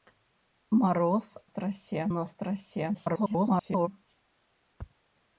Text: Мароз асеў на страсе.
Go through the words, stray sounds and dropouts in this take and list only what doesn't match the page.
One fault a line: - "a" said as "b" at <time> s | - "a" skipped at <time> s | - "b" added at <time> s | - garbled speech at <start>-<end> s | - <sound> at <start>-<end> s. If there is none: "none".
- "асеў" said as "страсе" at 1.5 s
- garbled speech at 2.9-3.9 s